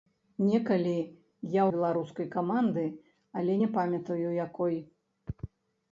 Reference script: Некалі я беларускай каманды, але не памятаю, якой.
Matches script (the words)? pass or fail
pass